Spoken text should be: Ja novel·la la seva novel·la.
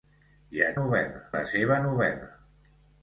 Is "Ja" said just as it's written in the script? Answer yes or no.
yes